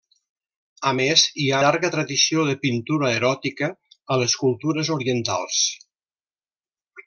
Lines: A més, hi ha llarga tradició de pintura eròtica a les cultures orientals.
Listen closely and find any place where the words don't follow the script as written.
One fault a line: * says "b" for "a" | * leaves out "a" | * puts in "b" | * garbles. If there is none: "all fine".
all fine